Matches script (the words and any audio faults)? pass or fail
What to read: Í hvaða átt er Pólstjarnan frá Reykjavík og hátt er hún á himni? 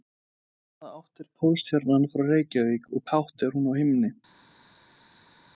pass